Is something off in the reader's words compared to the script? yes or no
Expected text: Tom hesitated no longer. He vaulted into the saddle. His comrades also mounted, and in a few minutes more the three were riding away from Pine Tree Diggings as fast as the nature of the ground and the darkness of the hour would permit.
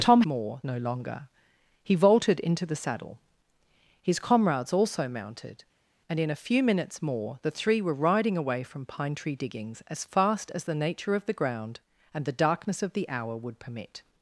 yes